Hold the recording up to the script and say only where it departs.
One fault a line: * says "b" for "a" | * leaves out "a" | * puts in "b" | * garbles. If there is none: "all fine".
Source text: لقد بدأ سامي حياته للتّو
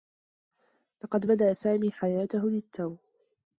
all fine